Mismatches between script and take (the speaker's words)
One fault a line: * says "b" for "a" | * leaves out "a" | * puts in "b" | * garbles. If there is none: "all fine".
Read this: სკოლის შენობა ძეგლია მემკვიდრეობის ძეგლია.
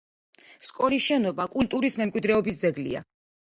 * says "კულტურის" for "ძეგლია"